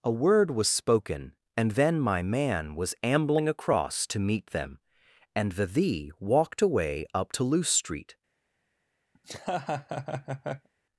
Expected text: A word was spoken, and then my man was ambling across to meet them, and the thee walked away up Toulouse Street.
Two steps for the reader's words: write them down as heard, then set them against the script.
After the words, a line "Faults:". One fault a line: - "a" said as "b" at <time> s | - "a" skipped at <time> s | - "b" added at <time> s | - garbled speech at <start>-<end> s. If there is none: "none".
A word was spoken, and then my man was ambling across to meet them, and the thee walked away up Toulouse Street.
Faults:
none